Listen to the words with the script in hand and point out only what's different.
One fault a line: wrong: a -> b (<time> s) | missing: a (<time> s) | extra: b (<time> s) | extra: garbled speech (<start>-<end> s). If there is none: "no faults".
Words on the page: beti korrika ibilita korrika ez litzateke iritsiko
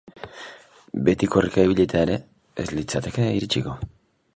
wrong: korrika -> ere (2.1 s)